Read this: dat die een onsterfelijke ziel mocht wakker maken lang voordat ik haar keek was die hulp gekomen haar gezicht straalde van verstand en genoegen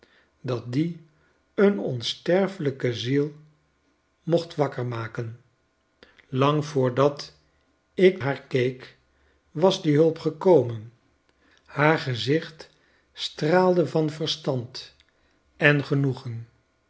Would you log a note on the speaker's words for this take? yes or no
no